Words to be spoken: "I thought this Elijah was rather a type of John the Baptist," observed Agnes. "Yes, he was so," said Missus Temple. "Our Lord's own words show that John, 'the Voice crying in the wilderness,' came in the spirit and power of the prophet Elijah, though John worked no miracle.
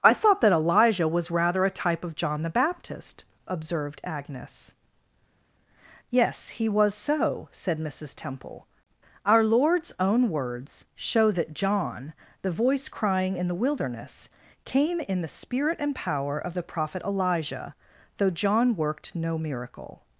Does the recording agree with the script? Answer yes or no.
no